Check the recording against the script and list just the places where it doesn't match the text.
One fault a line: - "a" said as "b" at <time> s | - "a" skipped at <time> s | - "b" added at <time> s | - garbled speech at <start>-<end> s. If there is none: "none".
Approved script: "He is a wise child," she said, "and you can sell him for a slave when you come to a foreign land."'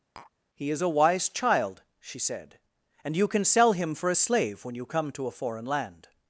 none